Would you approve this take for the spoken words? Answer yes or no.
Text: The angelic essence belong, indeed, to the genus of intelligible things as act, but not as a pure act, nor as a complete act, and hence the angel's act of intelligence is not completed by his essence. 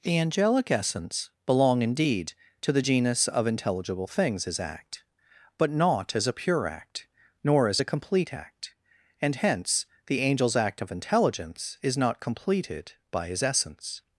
yes